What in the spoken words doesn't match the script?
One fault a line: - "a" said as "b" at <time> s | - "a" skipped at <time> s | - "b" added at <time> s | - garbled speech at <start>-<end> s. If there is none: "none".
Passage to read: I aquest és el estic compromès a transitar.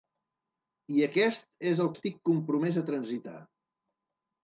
none